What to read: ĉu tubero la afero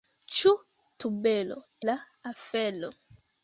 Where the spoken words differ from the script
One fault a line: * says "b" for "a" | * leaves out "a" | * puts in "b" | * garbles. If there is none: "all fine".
all fine